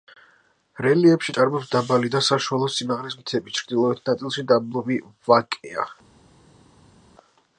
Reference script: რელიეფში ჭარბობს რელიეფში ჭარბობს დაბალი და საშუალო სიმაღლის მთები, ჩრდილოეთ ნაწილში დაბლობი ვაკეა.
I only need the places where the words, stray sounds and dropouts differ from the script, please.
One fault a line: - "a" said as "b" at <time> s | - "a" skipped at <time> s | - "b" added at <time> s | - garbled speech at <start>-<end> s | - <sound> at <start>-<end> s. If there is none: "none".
- "რელიეფში ჭარბობს" skipped at 1.7 s